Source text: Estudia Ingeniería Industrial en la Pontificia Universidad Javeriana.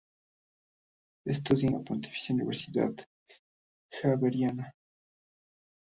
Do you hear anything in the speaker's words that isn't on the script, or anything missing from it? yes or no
yes